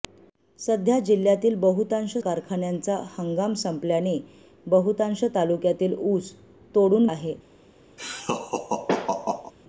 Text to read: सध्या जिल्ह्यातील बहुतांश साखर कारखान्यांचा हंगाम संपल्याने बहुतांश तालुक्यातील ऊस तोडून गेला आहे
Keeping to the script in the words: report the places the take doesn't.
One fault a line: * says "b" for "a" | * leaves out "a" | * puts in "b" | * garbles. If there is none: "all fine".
* leaves out "साखर"
* leaves out "गेला"